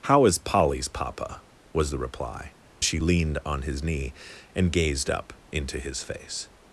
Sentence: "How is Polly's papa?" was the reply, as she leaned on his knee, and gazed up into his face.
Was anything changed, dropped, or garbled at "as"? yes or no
yes